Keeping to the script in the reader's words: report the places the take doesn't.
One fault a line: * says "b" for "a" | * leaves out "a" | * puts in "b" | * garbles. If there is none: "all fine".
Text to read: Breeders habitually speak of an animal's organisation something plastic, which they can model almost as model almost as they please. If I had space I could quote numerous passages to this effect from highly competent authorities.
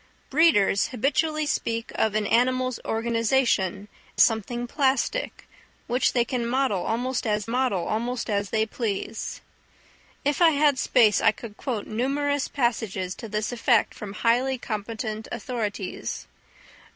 all fine